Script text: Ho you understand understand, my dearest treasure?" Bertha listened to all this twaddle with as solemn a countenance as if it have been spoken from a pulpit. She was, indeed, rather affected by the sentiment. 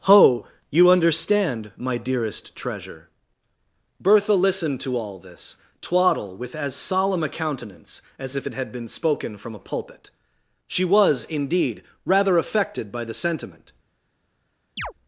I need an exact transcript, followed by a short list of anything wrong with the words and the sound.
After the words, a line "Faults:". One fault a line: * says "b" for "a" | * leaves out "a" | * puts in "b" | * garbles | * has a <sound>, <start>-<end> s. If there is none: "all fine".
Ho you understand, my dearest treasure?" Bertha listened to all this twaddle with as solemn a countenance as if it had been spoken from a pulpit. She was, indeed, rather affected by the sentiment.
Faults:
* leaves out "understand"
* says "had" for "have"
* has a chirp, 14.8-14.9 s